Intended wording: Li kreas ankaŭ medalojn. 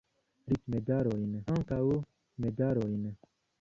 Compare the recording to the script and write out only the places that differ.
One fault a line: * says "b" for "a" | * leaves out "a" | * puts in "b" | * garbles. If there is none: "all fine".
* says "medalojn" for "kreas"